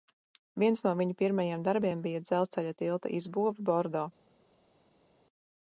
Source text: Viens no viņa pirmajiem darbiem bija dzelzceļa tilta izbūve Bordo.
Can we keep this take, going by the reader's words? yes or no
yes